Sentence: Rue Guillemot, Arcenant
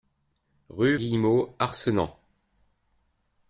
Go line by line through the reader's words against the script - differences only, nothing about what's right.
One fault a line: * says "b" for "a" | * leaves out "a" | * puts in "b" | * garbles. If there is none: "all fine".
all fine